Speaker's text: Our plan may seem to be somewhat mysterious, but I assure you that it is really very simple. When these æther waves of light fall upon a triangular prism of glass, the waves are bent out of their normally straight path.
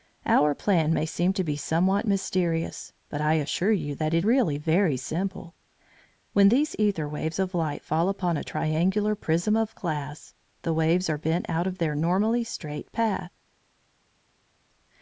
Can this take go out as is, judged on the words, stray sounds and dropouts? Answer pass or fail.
fail